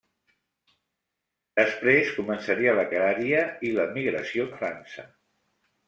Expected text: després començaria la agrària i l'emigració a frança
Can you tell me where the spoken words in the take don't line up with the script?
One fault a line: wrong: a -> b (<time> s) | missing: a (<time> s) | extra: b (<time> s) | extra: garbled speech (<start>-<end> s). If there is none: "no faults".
no faults